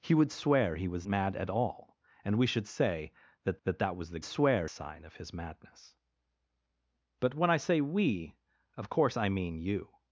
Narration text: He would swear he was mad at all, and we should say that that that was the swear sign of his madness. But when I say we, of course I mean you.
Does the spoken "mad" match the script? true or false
true